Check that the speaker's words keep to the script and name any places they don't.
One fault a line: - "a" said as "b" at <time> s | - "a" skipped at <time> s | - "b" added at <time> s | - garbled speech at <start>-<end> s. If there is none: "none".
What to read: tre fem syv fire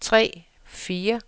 - "fem syv" skipped at 0.4 s